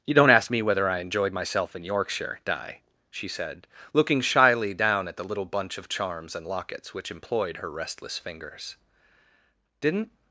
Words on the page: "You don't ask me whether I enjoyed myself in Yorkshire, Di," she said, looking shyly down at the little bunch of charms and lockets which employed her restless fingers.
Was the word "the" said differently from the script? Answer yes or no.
no